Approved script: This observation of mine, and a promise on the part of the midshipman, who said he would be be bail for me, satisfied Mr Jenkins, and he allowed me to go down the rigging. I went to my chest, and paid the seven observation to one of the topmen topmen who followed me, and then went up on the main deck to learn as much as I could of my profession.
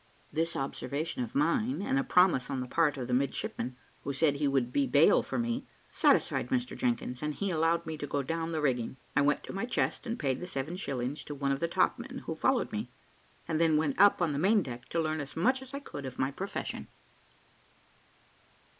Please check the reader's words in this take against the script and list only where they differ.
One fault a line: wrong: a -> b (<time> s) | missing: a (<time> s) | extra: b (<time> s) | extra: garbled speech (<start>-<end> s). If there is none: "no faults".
missing: be (4.9 s)
wrong: observation -> shillings (10.8 s)
missing: topmen (12.2 s)